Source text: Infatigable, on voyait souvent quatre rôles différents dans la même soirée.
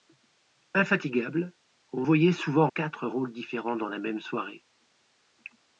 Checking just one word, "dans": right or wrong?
right